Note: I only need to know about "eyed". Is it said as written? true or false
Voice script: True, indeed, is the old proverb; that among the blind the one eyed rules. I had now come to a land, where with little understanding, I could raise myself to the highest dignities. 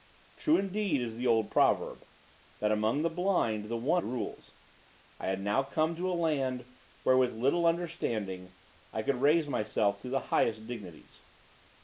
false